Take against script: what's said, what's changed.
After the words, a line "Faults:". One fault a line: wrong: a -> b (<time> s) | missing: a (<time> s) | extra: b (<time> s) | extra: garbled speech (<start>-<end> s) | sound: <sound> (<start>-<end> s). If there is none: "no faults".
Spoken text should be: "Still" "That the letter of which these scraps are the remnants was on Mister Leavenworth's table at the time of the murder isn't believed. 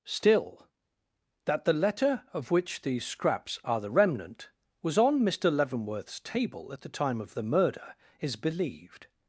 "Still" "That the letter of which these scraps are the remnant was on Mister Leavenworth's table at the time of the murder is believed.
Faults:
wrong: remnants -> remnant (3.9 s)
wrong: isn't -> is (8.2 s)